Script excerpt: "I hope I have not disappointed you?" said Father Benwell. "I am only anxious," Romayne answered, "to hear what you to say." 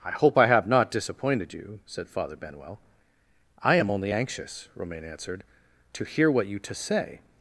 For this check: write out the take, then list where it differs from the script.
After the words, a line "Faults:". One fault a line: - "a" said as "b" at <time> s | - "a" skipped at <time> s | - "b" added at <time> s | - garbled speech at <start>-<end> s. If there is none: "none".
"I hope I have not disappointed you?" said Father Benwell. "I am only anxious," Romayne answered, "to hear what you to say."
Faults:
none